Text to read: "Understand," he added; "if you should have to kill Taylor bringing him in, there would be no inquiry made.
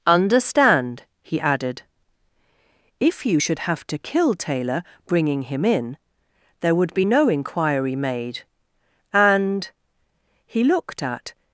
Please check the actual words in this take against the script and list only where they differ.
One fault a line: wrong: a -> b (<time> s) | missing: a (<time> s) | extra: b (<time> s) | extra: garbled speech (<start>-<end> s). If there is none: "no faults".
extra: And he looked at (9.1 s)